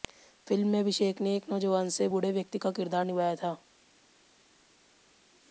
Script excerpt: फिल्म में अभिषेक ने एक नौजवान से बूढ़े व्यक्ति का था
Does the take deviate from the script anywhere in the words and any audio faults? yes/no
yes